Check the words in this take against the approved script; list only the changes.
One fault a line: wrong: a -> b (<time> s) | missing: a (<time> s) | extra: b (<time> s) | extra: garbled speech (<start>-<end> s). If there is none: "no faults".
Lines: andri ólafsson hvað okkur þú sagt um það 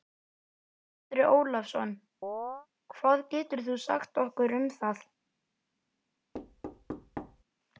wrong: okkur -> getur (3.4 s)
extra: okkur (4.3 s)